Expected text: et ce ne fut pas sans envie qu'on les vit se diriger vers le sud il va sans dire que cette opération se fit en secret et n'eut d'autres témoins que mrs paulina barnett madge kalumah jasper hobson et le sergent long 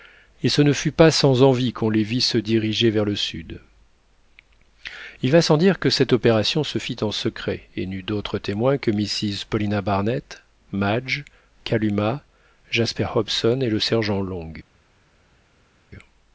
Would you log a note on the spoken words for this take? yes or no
no